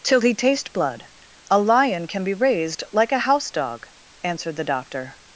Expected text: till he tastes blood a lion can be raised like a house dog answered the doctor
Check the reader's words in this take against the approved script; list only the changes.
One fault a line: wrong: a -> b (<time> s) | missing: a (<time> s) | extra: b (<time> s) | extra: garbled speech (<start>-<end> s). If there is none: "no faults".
wrong: tastes -> taste (0.3 s)